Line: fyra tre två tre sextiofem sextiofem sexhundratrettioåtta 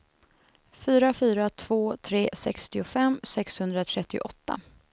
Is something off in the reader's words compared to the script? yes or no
yes